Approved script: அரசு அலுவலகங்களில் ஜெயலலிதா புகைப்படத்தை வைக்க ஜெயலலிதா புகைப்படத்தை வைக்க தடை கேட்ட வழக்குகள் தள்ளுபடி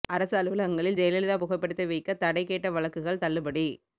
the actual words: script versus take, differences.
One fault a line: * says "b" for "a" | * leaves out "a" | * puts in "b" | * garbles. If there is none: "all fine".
* leaves out "ஜெயலலிதா புகைப்படத்தை வைக்க"